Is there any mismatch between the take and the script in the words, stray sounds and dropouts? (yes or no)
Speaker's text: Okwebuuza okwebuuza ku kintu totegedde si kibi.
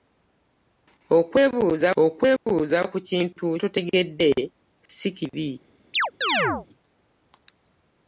yes